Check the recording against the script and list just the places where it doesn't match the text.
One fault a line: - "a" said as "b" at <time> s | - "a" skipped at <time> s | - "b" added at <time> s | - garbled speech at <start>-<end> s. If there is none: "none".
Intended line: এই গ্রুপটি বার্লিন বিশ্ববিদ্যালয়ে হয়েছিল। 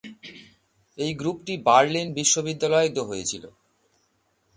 none